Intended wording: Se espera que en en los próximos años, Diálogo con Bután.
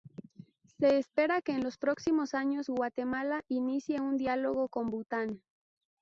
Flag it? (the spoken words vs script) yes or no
yes